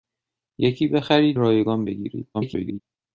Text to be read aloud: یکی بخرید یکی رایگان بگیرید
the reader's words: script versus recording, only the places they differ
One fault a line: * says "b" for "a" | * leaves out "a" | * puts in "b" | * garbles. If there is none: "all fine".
* leaves out "یکی"
* garbles